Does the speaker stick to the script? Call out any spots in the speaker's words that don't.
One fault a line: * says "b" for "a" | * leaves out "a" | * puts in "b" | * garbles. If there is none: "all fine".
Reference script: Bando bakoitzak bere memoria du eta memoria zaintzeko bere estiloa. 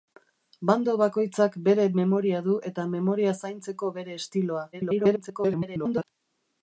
* garbles